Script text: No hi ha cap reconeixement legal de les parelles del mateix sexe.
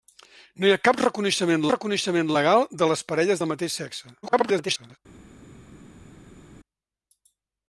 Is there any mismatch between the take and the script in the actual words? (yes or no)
yes